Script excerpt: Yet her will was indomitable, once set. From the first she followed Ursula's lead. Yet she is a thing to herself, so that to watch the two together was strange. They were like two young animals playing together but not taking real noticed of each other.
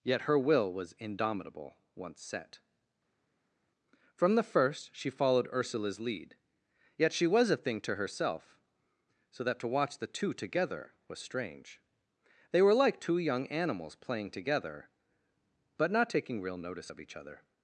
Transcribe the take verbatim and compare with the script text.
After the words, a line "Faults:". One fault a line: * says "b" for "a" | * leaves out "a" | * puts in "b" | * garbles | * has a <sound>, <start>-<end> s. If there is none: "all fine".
Yet her will was indomitable, once set. From the first she followed Ursula's lead. Yet she was a thing to herself, so that to watch the two together was strange. They were like two young animals playing together but not taking real notice of each other.
Faults:
* says "was" for "is"
* says "notice" for "noticed"